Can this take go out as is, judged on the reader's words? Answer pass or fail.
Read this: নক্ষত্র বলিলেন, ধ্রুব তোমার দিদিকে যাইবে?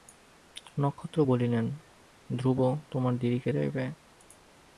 pass